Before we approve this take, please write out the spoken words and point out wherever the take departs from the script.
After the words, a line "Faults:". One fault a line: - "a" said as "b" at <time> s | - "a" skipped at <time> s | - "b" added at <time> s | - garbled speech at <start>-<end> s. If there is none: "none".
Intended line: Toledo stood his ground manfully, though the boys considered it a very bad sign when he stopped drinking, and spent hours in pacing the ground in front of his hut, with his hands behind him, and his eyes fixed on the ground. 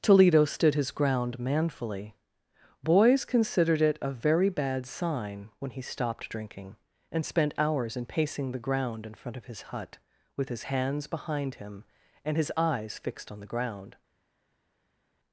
Toledo stood his ground manfully, boys considered it a very bad sign when he stopped drinking, and spent hours in pacing the ground in front of his hut, with his hands behind him, and his eyes fixed on the ground.
Faults:
- "though the" skipped at 2.1 s